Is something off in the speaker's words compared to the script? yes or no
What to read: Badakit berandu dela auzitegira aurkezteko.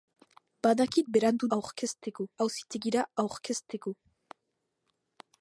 yes